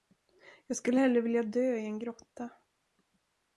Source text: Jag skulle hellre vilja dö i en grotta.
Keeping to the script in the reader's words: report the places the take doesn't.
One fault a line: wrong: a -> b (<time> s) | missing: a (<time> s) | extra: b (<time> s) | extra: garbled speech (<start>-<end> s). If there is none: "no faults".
no faults